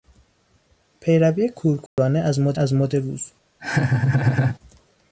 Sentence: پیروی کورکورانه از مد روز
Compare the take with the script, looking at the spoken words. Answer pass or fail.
fail